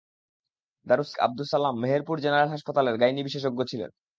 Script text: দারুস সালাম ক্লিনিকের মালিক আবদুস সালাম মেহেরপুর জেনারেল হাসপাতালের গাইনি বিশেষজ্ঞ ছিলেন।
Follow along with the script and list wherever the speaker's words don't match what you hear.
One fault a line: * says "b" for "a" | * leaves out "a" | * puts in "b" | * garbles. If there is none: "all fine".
* leaves out "সালাম ক্লিনিকের মালিক"